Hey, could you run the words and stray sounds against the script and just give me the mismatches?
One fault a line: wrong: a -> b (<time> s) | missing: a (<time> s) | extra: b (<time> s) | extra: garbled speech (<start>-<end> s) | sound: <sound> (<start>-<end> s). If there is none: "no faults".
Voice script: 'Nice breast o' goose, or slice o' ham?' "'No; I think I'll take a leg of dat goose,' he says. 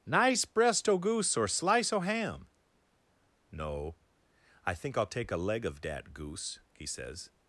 no faults